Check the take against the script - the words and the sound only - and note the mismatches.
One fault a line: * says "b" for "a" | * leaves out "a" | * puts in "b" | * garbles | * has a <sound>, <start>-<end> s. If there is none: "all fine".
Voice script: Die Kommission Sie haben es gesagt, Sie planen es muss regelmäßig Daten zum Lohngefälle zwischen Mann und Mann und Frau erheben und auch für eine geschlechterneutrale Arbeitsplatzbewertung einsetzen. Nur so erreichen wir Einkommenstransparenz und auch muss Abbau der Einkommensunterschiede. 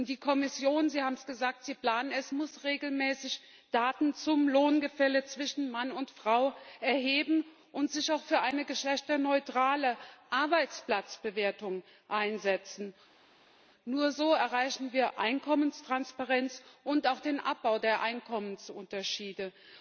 * leaves out "Mann und"
* puts in "sich"
* says "den" for "muss"